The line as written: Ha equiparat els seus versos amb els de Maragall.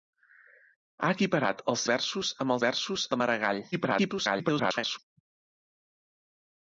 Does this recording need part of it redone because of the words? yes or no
yes